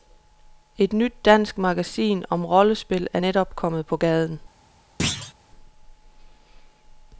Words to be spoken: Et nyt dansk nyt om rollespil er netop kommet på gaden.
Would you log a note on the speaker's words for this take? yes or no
yes